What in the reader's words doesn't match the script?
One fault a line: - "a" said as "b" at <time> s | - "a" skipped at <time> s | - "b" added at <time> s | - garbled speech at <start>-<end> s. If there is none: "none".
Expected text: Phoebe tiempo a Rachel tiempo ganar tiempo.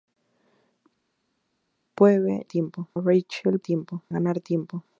none